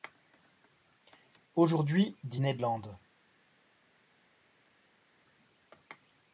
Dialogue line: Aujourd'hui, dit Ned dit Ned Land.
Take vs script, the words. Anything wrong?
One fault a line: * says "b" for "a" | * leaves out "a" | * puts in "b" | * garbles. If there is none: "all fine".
* leaves out "dit Ned"